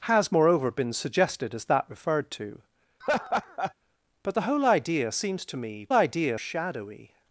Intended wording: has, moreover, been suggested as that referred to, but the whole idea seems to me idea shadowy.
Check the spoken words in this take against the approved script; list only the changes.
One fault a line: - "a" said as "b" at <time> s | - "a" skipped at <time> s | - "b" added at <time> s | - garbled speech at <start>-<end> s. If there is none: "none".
none